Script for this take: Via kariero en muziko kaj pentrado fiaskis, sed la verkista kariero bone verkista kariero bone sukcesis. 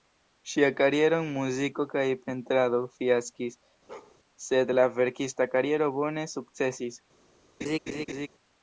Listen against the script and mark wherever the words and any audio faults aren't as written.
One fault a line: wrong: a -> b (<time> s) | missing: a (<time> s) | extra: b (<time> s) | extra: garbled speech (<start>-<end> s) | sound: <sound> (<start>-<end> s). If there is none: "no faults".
wrong: Via -> Ŝia (0.5 s)
sound: bark (3.9-4.2 s)
missing: verkista kariero bone (6.3 s)
sound: laugh (7.6-8.3 s)